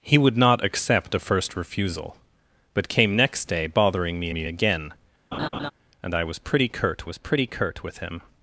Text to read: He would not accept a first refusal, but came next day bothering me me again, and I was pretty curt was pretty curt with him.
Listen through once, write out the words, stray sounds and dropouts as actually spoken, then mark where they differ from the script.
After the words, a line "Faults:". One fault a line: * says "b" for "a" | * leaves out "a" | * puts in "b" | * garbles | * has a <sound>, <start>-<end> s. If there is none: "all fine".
He would not accept a first refusal, but came next day bothering me me again, and I was pretty curt was pretty curt with him.
Faults:
* has a laugh, 5.3-5.7 s